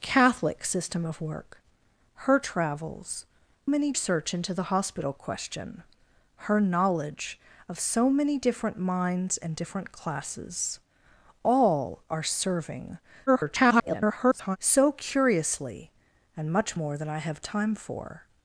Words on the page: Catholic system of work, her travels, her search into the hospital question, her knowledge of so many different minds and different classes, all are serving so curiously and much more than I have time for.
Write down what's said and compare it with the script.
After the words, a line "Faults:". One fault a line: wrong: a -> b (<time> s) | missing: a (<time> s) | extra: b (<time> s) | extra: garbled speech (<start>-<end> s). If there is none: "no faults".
Catholic system of work, her travels, many search into the hospital question, her knowledge of so many different minds and different classes, all are serving [garbled] so curiously and much more than I have time for.
Faults:
wrong: her -> many (3.6 s)
extra: garbled speech (13.3-14.6 s)